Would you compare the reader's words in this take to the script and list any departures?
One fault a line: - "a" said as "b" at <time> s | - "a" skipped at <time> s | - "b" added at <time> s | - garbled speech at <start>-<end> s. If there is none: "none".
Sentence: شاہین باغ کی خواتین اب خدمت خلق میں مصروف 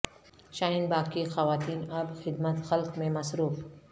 none